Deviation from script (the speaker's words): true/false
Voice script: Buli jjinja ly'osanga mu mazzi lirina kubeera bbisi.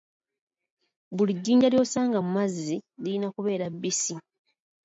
false